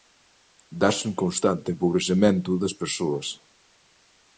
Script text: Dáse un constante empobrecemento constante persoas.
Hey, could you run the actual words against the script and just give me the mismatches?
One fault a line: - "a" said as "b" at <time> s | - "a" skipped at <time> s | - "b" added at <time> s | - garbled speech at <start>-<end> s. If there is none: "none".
- "constante" said as "das" at 2.6 s